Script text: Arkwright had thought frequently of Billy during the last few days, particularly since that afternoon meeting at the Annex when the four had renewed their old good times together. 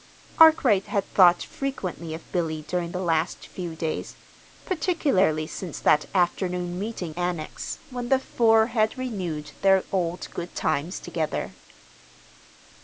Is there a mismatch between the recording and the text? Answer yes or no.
yes